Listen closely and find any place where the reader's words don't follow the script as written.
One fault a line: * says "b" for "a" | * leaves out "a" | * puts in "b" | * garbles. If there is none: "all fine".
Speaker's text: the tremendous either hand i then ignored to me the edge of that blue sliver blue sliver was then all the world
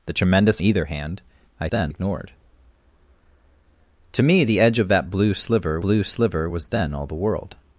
all fine